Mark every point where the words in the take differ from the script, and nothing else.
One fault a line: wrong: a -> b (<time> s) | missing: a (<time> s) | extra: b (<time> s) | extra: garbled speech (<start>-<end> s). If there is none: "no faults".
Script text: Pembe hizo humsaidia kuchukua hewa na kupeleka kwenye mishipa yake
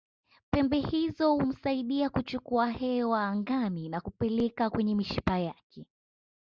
extra: angani (3.3 s)